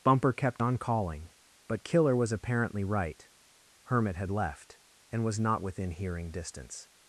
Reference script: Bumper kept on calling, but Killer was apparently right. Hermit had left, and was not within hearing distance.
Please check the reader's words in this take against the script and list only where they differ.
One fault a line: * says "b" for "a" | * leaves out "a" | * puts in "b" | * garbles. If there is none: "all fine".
all fine